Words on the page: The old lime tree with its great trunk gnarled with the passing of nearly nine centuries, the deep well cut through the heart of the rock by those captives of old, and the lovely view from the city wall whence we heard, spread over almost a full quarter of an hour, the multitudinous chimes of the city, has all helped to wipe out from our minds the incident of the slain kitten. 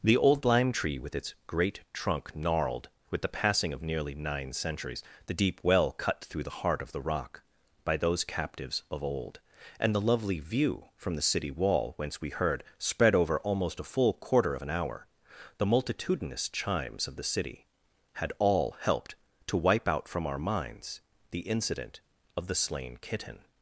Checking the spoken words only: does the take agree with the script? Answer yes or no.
no